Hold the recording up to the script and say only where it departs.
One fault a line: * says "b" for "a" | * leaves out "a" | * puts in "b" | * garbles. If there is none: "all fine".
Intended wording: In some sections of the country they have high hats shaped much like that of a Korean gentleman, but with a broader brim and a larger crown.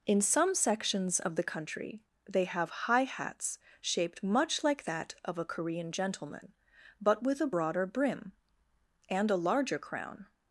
all fine